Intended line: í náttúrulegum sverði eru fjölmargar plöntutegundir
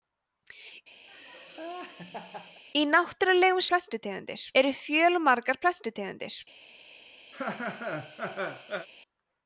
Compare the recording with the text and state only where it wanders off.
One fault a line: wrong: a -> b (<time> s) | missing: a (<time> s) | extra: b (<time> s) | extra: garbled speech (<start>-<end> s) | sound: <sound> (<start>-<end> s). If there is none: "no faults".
sound: laugh (1.1-2.6 s)
wrong: sverði -> plöntutegundir (3.7 s)
sound: laugh (7.3-8.9 s)